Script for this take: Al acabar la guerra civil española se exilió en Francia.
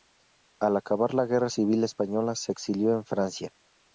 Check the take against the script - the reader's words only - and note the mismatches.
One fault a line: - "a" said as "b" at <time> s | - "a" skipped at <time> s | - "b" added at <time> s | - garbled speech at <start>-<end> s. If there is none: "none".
none